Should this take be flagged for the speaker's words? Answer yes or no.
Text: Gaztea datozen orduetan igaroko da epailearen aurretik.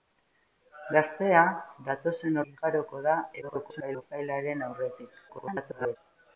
yes